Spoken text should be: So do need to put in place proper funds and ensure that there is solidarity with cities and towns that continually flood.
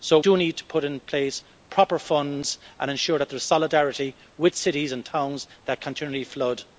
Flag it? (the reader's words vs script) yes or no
no